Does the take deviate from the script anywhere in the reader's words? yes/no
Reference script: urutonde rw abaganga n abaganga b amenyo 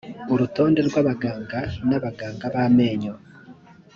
no